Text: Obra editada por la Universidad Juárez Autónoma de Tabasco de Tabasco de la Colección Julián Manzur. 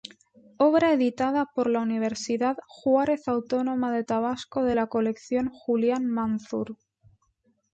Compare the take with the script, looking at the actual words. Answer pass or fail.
fail